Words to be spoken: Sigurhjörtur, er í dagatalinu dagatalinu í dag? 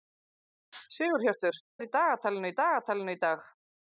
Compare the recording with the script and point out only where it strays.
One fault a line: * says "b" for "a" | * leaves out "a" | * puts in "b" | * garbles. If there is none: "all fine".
all fine